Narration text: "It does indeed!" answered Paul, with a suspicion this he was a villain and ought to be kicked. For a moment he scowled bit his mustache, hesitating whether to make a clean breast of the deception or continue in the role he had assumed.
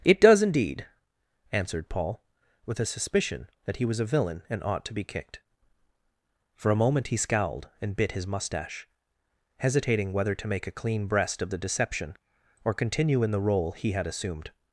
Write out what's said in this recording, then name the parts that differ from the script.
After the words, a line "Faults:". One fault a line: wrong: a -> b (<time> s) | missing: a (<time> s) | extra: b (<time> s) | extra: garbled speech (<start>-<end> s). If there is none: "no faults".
"It does indeed!" answered Paul, with a suspicion that he was a villain and ought to be kicked. For a moment he scowled and bit his mustache, hesitating whether to make a clean breast of the deception or continue in the role he had assumed.
Faults:
wrong: this -> that (3.6 s)
extra: and (7.8 s)